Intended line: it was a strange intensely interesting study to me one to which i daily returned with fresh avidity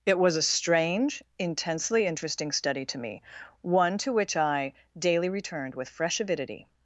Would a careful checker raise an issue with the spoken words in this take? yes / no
no